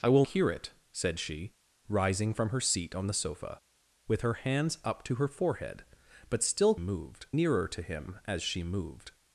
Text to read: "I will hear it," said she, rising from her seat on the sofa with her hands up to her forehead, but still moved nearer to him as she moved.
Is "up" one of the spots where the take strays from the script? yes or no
no